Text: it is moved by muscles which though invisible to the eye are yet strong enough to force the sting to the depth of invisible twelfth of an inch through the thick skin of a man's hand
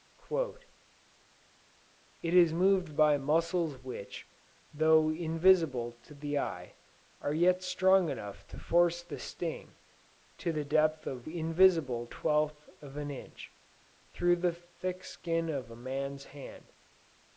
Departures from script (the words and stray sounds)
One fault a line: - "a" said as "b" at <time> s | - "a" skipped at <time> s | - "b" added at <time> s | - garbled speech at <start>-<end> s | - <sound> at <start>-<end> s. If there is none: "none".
none